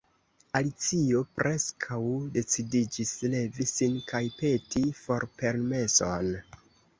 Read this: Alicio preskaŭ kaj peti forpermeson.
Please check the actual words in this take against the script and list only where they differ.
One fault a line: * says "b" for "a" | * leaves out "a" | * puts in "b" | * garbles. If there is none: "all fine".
* puts in "decidiĝis levi sin"